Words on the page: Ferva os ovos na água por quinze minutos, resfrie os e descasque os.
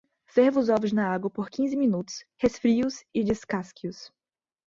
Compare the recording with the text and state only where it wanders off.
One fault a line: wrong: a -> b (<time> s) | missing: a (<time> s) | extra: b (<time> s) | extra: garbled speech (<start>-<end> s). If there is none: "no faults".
no faults